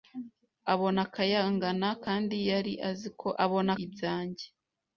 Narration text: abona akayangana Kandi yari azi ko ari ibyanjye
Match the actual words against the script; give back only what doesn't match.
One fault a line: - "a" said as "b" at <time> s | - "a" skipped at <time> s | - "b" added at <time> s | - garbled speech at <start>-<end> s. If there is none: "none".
- "ari" said as "abona" at 3.4 s